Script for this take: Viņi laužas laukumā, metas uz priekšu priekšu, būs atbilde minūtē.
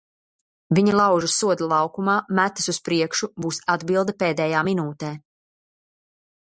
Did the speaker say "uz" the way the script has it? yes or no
yes